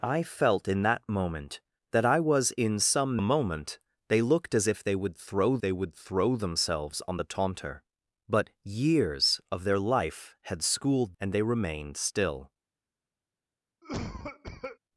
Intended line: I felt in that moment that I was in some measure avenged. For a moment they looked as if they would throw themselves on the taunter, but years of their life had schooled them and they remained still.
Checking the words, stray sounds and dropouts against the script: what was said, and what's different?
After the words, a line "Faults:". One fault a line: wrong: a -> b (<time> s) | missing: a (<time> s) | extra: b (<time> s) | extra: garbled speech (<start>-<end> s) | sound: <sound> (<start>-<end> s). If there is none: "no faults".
I felt in that moment that I was in some a moment they looked as if they would throw they would throw themselves on the taunter, but years of their life had schooled and they remained still.
Faults:
missing: measure avenged For (3.2 s)
extra: they would throw (5.6 s)
missing: them (11.2 s)
sound: cough (13.8-14.8 s)